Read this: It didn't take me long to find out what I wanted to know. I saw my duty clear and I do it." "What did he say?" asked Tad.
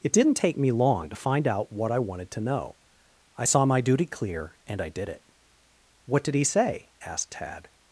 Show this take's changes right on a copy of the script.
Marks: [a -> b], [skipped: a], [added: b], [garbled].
It didn't take me long to find out what I wanted to know. I saw my duty clear and I [do -> did] it." "What did he say?" asked Tad.